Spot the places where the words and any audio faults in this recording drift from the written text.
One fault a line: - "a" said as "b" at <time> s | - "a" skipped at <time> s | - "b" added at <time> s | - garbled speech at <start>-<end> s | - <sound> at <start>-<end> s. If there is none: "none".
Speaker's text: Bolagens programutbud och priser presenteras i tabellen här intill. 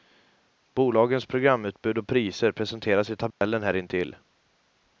- dropout at 3.3-3.4 s